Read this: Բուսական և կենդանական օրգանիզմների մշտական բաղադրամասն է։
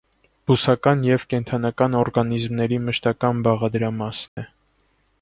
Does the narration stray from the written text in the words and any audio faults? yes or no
yes